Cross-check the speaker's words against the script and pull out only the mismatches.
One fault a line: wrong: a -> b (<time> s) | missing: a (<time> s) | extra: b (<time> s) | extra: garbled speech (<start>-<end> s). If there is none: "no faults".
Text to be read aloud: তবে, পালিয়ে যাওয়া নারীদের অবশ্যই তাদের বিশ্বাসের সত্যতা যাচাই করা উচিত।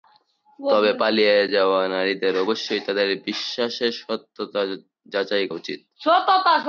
missing: করা (5.5 s)